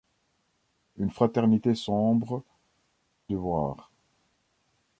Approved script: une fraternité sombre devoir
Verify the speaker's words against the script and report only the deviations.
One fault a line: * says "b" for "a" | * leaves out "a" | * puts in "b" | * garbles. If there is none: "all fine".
all fine